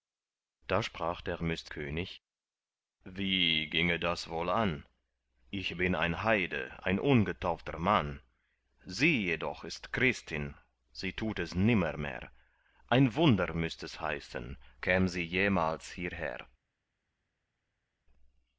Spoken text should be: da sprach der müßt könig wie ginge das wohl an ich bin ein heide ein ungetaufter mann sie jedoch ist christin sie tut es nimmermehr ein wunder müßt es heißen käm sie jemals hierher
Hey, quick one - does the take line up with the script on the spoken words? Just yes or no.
yes